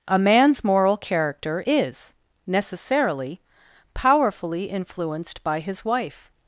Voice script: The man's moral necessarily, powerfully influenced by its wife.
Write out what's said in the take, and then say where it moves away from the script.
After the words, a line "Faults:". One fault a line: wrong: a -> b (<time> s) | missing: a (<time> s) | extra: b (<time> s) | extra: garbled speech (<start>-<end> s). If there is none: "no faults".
A man's moral character is, necessarily, powerfully influenced by his wife.
Faults:
wrong: The -> A (0.1 s)
extra: character is (1.0 s)
wrong: its -> his (5.6 s)